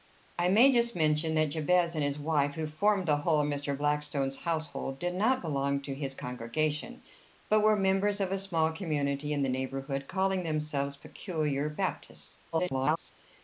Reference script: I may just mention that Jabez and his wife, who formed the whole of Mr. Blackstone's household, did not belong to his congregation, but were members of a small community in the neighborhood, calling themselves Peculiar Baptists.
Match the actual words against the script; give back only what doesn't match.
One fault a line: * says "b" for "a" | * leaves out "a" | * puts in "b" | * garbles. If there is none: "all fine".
* garbles